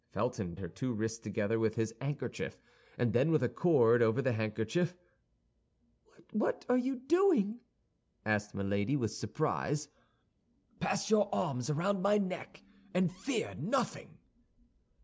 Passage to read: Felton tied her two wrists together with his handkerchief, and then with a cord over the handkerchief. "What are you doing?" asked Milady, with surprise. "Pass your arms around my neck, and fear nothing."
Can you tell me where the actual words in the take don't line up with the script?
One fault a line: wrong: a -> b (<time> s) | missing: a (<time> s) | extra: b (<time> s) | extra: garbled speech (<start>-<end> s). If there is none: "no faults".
missing: tied (0.6 s)